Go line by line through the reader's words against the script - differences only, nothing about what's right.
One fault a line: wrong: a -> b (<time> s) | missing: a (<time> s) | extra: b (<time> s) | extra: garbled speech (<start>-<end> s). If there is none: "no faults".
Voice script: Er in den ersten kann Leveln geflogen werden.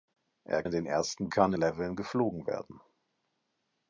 no faults